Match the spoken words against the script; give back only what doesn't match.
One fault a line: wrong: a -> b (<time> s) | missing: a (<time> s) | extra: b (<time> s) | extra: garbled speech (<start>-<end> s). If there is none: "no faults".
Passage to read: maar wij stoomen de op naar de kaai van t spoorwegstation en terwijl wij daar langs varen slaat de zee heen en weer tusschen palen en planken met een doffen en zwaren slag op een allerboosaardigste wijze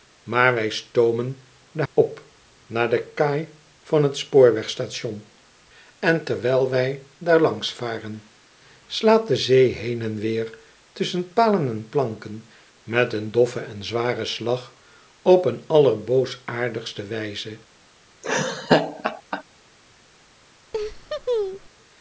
no faults